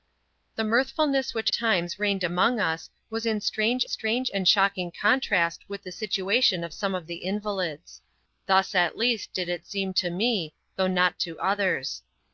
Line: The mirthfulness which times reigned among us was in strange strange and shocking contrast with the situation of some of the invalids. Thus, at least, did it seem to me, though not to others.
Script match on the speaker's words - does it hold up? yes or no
yes